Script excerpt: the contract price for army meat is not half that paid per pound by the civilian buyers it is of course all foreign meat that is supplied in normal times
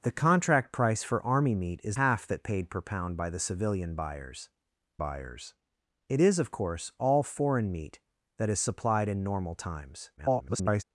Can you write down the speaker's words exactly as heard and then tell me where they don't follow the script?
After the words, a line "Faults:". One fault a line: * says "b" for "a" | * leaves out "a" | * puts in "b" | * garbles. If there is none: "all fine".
the contract price for army meat is half that paid per pound by the civilian buyers buyers it is of course all foreign meat that is supplied in normal times [garbled]
Faults:
* leaves out "not"
* puts in "buyers"
* garbles